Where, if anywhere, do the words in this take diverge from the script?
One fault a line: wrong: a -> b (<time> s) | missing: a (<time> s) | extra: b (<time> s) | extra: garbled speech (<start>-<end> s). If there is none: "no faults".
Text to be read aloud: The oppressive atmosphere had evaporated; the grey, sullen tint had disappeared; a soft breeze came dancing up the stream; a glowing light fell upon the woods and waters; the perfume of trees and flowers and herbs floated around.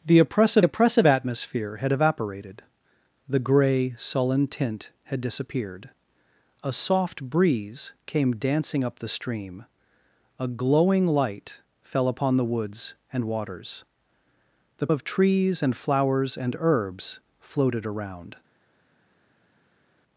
extra: oppressive (0.6 s)
missing: perfume (14.9 s)